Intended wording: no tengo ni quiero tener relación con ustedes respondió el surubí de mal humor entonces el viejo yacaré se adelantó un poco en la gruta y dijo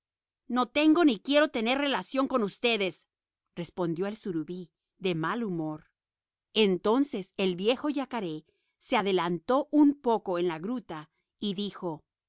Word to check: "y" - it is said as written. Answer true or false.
true